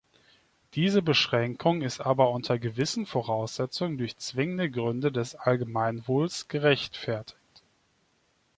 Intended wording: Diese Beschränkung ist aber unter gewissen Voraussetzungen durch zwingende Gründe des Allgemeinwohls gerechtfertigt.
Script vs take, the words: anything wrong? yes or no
no